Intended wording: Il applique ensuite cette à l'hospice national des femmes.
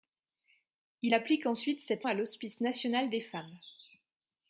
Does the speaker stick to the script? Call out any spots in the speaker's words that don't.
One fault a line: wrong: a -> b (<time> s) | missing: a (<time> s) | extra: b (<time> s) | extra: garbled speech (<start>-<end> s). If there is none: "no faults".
no faults